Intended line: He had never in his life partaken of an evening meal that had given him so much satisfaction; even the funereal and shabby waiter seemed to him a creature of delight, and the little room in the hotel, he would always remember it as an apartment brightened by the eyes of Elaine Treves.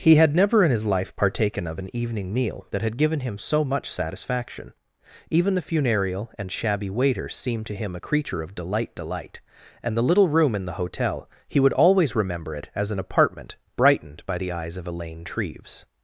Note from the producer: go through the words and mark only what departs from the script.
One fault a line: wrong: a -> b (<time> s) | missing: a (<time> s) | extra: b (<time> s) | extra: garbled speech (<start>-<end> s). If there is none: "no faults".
extra: delight (8.9 s)